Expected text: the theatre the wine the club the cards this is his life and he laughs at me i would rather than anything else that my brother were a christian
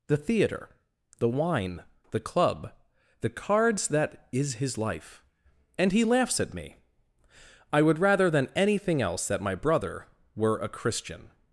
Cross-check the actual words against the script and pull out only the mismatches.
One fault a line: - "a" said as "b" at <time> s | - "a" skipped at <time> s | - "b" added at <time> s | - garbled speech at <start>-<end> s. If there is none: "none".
- "this" said as "that" at 3.9 s